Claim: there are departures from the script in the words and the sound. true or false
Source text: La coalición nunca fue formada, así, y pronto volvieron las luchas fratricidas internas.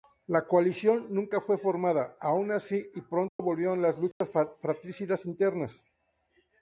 true